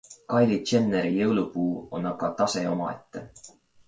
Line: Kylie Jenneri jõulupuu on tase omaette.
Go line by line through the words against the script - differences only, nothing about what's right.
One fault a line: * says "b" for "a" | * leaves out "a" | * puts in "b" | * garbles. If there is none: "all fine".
* puts in "aga"